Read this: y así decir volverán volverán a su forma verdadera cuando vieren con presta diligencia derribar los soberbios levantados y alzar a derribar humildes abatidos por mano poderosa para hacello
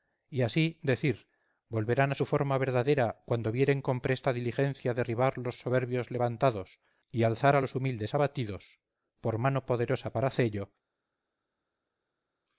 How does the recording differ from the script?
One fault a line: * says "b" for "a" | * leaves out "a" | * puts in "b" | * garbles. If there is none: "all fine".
* leaves out "volverán"
* says "los" for "derribar"